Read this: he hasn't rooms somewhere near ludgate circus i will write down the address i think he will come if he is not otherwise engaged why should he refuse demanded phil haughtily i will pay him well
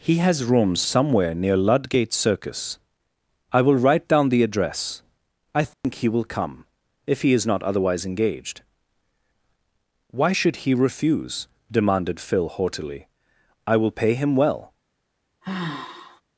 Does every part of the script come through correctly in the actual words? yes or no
no